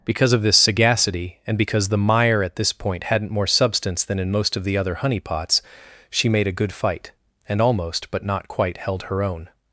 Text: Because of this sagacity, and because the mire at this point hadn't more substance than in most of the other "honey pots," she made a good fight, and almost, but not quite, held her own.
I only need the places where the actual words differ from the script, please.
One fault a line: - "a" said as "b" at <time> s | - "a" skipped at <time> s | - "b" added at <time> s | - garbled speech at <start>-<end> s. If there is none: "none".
none